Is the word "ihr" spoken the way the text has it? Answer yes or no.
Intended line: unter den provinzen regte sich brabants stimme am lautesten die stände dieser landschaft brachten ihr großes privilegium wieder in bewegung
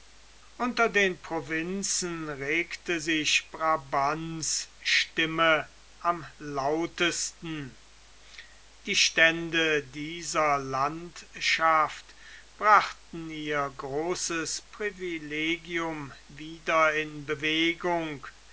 yes